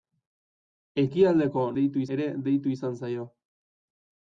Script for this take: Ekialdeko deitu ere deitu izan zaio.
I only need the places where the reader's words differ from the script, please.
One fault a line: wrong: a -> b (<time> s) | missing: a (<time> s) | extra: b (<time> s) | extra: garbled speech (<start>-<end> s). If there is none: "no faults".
no faults